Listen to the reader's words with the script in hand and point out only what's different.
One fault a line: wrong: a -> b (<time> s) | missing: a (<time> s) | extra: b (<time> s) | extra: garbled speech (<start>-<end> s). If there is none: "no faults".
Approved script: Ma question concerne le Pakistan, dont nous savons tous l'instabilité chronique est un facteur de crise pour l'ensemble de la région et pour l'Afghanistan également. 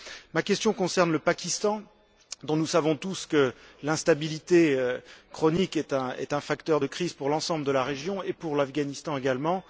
extra: que (3.3 s)